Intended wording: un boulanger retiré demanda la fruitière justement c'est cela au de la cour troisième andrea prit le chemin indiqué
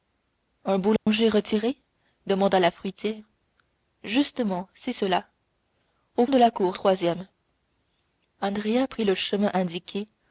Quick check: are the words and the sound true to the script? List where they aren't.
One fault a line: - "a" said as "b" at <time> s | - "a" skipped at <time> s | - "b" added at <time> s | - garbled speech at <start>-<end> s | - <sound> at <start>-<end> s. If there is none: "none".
- dropout at 1.0-1.1 s